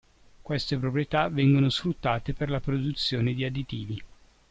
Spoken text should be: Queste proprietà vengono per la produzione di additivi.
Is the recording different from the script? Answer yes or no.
yes